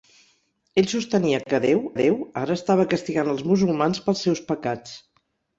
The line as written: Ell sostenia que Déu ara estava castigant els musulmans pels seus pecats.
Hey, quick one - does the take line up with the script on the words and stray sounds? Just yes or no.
no